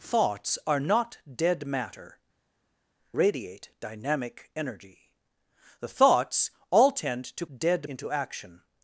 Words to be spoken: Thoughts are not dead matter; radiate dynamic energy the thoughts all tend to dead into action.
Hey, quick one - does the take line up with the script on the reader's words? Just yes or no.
yes